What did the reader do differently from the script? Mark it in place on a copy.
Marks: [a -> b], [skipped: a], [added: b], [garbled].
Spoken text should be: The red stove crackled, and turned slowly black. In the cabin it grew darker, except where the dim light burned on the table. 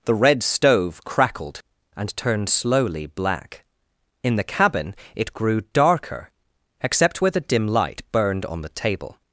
The red stove crackled, and turned slowly black. In the cabin it grew darker, except where the dim light burned on the table.